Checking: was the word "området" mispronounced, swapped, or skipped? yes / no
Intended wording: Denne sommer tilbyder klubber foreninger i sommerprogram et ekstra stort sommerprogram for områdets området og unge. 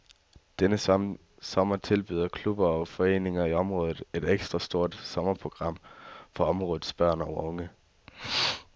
yes